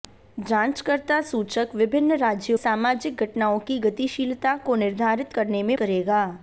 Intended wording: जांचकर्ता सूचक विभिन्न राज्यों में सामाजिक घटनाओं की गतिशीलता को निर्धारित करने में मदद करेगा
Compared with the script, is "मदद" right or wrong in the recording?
wrong